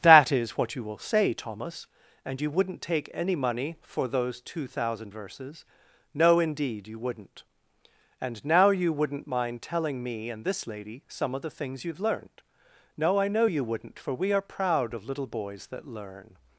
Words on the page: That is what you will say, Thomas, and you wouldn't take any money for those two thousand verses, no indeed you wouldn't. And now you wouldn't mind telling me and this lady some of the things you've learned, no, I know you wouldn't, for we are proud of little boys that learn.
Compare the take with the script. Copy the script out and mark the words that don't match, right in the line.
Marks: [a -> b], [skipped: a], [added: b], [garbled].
That is what you will say, Thomas, and you wouldn't take any money for those two thousand verses, no indeed you wouldn't. And now you wouldn't mind telling me and this lady some of the things you've learned, no, I know you wouldn't, for we are proud of little boys that learn.